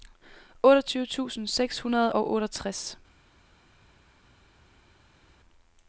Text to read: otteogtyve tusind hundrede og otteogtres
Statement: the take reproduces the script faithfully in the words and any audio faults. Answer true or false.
false